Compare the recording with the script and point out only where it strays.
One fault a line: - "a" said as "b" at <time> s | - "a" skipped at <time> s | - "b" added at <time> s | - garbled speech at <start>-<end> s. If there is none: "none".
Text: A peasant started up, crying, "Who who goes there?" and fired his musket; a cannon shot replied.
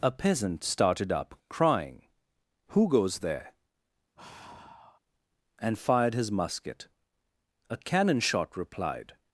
- "who" skipped at 2.9 s